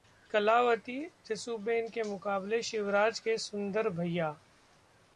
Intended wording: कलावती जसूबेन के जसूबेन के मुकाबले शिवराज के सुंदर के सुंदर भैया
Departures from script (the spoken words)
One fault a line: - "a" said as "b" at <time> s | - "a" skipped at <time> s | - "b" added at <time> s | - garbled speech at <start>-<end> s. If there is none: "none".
- "जसूबेन के" skipped at 2.0 s
- "के सुंदर" skipped at 3.9 s